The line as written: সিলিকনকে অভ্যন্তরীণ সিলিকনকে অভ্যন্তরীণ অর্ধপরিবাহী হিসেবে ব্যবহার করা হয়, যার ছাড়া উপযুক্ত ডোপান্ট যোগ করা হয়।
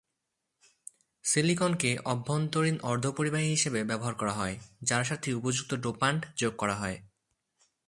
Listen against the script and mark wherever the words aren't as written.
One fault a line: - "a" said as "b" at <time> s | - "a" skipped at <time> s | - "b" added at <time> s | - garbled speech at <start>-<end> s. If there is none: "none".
- "সিলিকনকে অভ্যন্তরীণ" skipped at 2.8 s
- "ছাড়া" said as "সাথে" at 5.0 s